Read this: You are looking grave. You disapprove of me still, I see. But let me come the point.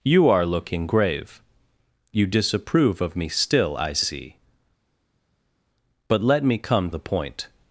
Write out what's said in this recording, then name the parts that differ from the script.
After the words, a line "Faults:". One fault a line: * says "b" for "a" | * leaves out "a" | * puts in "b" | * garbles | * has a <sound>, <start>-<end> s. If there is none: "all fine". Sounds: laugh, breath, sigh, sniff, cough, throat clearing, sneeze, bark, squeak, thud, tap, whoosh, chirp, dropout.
You are looking grave. You disapprove of me still, I see. But let me come the point.
Faults:
all fine